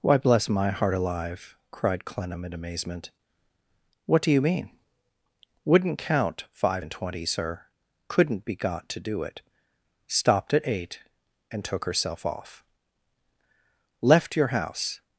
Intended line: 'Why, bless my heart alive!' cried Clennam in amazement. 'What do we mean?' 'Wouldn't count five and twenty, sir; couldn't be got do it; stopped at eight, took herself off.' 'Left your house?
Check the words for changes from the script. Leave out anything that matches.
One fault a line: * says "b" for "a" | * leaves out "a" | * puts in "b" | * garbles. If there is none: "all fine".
* says "you" for "we"
* puts in "to"
* puts in "and"